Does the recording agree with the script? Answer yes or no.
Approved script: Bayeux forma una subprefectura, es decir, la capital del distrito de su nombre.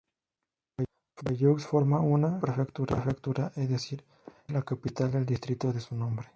yes